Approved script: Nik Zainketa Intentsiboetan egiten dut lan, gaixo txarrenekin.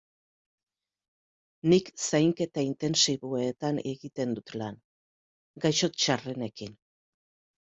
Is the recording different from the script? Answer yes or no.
no